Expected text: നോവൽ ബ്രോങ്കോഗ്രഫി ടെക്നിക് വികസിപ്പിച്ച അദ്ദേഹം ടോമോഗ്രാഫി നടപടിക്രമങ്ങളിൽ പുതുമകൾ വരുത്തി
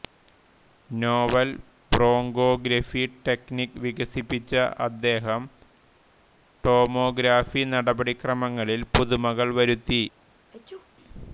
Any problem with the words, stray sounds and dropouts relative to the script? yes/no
yes